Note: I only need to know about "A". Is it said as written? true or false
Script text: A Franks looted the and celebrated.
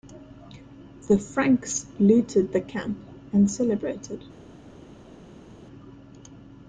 false